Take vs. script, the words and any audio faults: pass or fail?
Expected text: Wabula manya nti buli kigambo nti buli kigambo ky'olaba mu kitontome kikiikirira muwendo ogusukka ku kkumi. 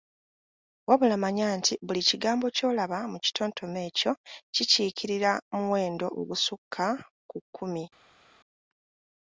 fail